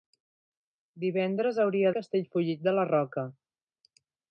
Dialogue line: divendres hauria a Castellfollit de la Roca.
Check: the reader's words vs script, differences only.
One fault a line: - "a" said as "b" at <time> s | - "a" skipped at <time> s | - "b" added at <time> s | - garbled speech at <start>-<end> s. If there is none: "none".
none